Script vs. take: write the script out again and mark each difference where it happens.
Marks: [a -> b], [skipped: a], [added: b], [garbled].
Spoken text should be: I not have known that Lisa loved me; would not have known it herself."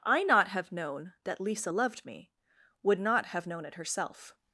I not have known that Lisa loved me; would not have known it herself."